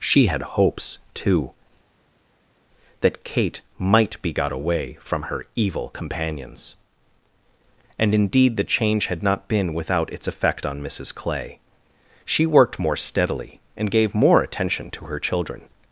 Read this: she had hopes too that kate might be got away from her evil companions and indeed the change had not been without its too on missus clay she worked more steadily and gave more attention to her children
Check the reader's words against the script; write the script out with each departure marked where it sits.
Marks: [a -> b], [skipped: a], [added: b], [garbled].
she had hopes too that kate might be got away from her evil companions and indeed the change had not been without its [too -> effect] on missus clay she worked more steadily and gave more attention to her children